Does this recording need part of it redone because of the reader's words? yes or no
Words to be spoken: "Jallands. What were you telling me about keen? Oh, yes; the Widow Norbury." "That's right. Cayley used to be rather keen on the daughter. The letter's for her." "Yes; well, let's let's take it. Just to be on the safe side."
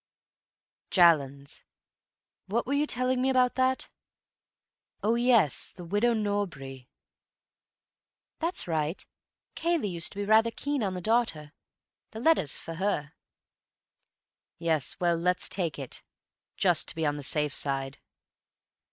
yes